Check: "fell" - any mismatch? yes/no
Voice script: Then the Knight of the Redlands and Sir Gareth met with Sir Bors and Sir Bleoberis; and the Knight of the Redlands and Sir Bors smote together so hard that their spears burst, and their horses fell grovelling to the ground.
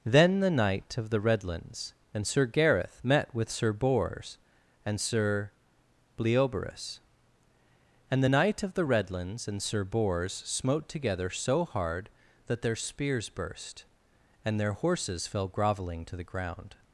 no